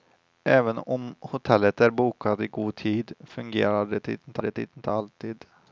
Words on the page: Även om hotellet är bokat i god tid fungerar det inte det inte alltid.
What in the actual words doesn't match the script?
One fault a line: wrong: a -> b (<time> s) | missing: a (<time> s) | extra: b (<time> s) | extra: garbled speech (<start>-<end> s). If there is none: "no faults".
no faults